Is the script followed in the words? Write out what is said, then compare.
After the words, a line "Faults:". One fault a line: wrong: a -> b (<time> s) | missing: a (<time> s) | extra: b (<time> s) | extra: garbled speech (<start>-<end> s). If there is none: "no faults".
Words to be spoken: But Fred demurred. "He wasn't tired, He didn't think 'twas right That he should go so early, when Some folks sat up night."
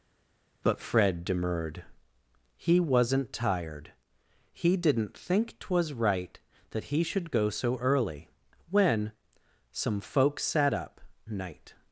But Fred demurred. "He wasn't tired, He didn't think 'twas right That he should go so early, when Some folks sat up night."
Faults:
no faults